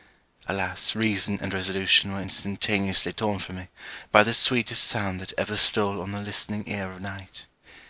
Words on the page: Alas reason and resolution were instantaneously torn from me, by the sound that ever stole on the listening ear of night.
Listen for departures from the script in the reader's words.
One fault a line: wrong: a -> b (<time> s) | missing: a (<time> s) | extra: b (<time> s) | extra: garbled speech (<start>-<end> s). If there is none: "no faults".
extra: sweetest (4.3 s)